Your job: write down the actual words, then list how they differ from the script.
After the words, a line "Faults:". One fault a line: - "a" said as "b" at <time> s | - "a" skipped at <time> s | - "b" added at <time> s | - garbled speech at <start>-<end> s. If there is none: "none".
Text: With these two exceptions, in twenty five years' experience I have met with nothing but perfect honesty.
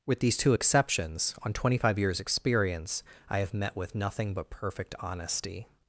With these two exceptions, on twenty five years' experience I have met with nothing but perfect honesty.
Faults:
- "in" said as "on" at 1.4 s